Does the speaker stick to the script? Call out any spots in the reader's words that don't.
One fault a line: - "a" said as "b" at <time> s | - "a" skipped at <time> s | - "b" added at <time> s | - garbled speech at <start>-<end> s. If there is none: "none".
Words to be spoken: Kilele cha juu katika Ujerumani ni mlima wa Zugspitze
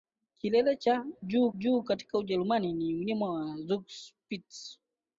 - "juu" added at 1.5 s